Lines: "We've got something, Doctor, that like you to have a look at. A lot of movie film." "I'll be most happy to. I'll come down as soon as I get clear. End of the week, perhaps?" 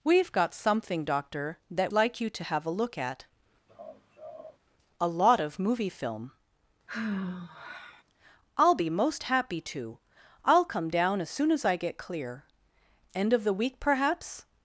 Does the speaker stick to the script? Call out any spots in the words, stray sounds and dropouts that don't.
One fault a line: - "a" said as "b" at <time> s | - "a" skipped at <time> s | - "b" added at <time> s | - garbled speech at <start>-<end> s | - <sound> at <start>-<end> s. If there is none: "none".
- laugh at 3.7-4.6 s
- sigh at 6.9-8.0 s